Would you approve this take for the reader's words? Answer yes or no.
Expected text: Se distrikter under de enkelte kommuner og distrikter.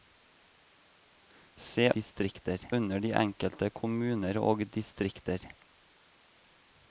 yes